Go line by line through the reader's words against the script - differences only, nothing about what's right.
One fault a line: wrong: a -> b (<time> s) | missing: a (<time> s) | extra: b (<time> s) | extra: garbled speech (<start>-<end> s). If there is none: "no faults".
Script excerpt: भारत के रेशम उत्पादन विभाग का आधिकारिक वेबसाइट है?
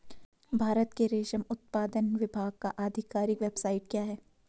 extra: क्या (3.9 s)